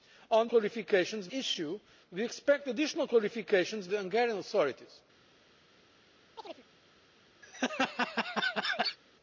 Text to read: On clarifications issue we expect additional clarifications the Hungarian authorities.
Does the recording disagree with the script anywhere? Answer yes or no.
no